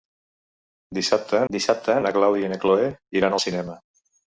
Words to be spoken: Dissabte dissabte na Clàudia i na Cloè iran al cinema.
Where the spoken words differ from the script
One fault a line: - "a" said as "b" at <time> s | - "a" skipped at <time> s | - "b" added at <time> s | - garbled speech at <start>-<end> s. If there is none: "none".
none